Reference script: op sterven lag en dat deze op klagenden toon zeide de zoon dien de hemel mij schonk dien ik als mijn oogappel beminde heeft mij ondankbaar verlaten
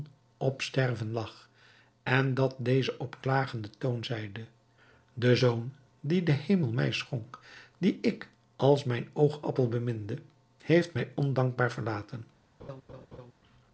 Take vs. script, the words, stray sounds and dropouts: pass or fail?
fail